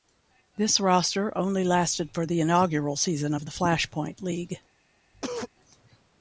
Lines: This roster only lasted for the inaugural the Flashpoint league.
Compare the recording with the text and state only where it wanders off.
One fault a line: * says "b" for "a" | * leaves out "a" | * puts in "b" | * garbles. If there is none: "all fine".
* puts in "season of"